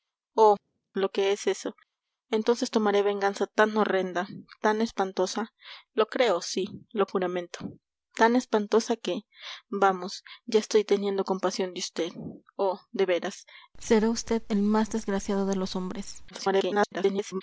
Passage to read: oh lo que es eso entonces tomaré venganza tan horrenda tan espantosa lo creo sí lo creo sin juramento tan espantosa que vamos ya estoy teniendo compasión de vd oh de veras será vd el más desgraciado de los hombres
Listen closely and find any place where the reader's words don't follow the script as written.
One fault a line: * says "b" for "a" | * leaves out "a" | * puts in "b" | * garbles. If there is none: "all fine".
* leaves out "creo sin"
* garbles